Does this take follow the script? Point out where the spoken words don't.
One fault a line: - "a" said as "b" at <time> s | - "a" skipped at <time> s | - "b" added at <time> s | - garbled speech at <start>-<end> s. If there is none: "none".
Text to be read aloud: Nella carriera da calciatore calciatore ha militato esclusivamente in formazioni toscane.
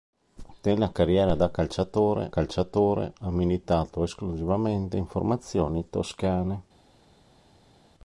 none